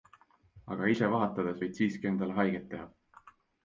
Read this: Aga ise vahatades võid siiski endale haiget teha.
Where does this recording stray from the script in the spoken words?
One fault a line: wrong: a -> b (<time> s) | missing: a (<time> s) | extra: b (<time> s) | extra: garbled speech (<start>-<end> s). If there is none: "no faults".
no faults